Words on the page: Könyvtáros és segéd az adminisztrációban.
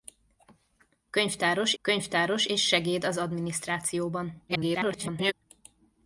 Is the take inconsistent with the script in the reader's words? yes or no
yes